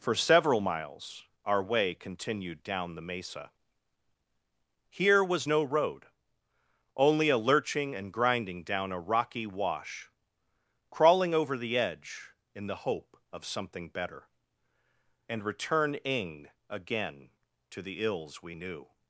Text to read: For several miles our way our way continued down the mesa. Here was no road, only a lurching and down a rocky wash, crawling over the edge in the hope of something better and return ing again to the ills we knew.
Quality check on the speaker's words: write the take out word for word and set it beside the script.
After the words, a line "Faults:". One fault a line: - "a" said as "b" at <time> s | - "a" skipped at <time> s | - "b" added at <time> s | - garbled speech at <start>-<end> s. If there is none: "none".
For several miles our way continued down the mesa. Here was no road, only a lurching and grinding down a rocky wash, crawling over the edge in the hope of something better and return ing again to the ills we knew.
Faults:
- "our way" skipped at 1.9 s
- "grinding" added at 8.1 s